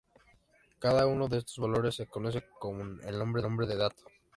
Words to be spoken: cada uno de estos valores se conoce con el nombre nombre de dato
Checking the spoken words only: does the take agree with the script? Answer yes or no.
yes